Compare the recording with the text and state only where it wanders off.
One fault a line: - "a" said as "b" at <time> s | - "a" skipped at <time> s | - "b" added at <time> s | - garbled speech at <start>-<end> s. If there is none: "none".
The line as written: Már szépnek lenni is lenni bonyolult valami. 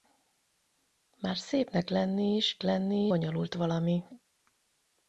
none